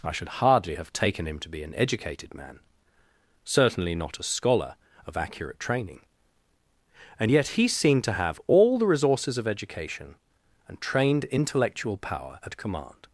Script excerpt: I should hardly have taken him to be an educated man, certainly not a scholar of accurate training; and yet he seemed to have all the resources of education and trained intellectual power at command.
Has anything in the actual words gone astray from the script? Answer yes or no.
no